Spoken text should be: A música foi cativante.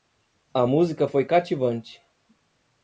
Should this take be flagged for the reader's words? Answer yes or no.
no